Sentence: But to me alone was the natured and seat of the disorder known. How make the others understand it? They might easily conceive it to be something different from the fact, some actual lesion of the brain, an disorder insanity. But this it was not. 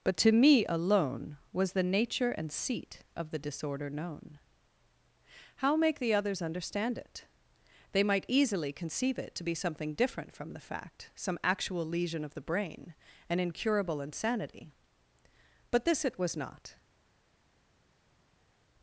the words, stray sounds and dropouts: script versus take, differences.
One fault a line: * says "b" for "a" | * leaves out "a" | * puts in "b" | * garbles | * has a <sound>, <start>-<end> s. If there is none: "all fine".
* says "nature" for "natured"
* says "incurable" for "disorder"